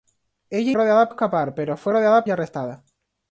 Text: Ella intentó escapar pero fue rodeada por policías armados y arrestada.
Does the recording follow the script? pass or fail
fail